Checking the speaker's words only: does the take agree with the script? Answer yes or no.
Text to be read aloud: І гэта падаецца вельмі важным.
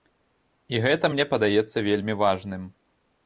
no